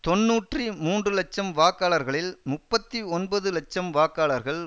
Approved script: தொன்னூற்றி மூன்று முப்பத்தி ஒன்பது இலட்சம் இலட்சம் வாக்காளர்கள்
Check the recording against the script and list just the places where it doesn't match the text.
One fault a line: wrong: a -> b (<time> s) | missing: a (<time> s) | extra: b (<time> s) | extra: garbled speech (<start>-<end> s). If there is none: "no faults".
extra: இலட்சம் வாக்காளர்களில் (1.1 s)
missing: இலட்சம் (3.9 s)